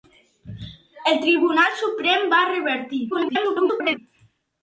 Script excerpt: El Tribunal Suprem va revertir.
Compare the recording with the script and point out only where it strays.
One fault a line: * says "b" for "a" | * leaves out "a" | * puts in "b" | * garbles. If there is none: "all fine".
* garbles